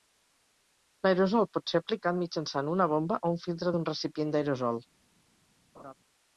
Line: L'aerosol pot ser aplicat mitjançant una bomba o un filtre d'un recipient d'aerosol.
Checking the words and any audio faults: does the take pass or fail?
fail